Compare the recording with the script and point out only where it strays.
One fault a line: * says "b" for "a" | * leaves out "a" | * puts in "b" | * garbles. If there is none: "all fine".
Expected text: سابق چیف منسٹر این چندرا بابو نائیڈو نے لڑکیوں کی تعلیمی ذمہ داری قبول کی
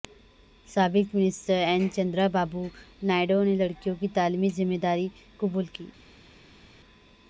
* leaves out "چیف"